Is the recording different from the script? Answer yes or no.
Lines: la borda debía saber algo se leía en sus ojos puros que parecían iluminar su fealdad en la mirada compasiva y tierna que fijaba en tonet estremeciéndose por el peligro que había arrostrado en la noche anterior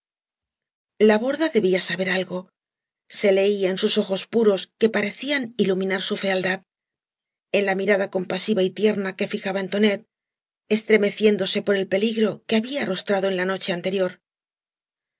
no